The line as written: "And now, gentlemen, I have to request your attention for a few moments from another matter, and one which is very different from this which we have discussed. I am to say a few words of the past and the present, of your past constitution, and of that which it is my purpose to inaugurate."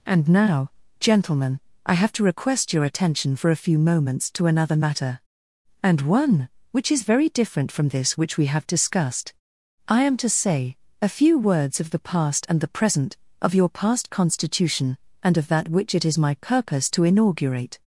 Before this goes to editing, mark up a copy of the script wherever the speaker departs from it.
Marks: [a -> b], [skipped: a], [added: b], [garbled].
"And now, gentlemen, I have to request your attention for a few moments [from -> to] another matter, and one which is very different from this which we have discussed. I am to say a few words of the past and the present, of your past constitution, and of that which it is my purpose to inaugurate."